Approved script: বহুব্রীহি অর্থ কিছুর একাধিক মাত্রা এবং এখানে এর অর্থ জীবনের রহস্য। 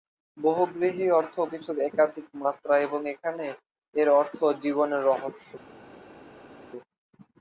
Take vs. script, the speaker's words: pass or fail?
pass